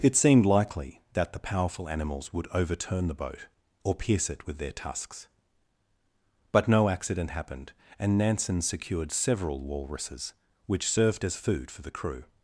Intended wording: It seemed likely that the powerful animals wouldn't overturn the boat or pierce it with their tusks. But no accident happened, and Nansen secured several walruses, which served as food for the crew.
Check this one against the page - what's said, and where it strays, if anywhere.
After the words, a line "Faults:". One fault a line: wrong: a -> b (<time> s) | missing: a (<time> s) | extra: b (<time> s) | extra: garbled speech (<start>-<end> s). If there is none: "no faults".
It seemed likely that the powerful animals would overturn the boat or pierce it with their tusks. But no accident happened, and Nansen secured several walruses, which served as food for the crew.
Faults:
wrong: wouldn't -> would (2.3 s)